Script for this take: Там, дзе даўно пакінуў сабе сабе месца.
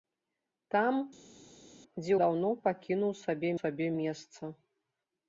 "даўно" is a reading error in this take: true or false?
false